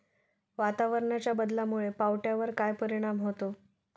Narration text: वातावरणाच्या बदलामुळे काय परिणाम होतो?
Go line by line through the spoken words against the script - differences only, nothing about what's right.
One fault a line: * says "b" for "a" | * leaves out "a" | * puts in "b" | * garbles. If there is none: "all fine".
* puts in "पावट्यावर"